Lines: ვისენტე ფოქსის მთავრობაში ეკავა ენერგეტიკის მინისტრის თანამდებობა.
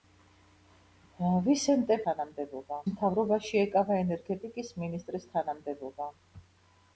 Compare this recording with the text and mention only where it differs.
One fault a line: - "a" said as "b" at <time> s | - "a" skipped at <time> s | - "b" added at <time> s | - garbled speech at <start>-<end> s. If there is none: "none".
- "ფოქსის" said as "თანამდებობა" at 2.1 s